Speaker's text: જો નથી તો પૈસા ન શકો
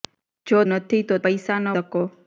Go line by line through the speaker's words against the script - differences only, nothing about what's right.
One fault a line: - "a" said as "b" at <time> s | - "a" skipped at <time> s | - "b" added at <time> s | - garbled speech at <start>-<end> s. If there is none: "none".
none